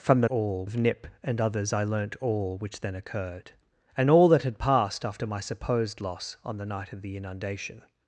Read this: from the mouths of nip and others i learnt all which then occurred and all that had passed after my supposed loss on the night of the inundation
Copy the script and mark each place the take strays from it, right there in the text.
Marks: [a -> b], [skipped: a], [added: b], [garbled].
from the [mouths -> all] of nip and others i learnt all which then occurred and all that had passed after my supposed loss on the night of the inundation